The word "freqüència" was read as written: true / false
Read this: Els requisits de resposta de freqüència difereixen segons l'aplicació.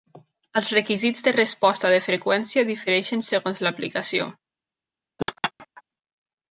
true